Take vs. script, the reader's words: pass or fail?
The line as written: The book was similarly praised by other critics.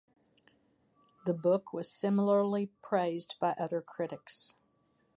pass